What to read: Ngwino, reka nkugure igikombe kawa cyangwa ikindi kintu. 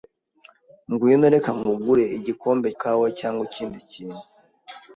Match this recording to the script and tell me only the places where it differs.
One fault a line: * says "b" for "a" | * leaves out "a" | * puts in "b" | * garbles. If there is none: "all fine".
all fine